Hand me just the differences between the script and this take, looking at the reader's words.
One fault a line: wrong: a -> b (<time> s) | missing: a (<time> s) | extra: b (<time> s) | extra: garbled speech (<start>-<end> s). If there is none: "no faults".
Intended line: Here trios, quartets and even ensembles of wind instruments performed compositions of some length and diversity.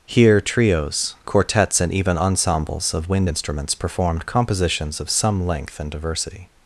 no faults